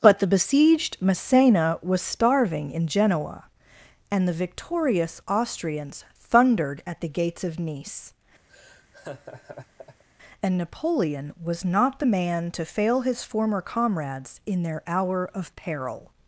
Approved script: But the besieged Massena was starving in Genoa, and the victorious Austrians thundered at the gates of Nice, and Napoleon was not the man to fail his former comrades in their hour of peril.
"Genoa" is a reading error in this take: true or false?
false